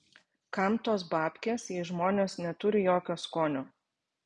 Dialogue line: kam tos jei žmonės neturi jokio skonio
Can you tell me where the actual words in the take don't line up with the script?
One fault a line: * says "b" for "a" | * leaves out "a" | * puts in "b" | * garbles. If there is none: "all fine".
* puts in "babkės"